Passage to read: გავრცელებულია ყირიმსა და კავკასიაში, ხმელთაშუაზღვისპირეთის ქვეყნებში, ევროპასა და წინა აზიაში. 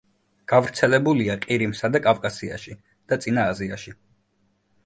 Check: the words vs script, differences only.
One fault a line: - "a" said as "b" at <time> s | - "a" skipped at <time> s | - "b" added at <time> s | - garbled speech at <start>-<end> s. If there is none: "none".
- "ხმელთაშუაზღვისპირეთის ქვეყნებში ევროპასა" skipped at 2.7 s